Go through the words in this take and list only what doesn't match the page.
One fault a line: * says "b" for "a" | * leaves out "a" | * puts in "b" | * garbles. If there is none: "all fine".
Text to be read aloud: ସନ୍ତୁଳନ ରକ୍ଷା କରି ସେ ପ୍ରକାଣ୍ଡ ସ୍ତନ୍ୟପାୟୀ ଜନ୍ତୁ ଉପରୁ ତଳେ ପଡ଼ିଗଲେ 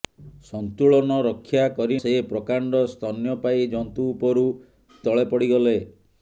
all fine